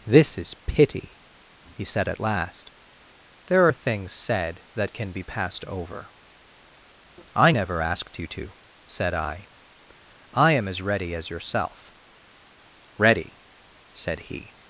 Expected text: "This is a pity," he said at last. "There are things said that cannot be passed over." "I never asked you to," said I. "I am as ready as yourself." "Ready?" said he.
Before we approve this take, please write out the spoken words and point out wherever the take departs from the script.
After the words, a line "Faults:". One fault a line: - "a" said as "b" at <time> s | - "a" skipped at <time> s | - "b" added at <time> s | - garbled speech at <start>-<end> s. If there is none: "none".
"This is pity," he said at last. "There are things said that can be passed over." "I never asked you to," said I. "I am as ready as yourself." "Ready?" said he.
Faults:
- "a" skipped at 0.5 s
- "cannot" said as "can" at 4.9 s